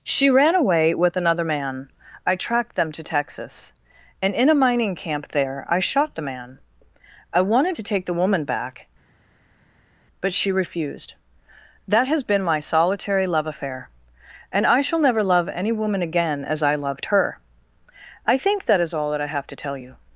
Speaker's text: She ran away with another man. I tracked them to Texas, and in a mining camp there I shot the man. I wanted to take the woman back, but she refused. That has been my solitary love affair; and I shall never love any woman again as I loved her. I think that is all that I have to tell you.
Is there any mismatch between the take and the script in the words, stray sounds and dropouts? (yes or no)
no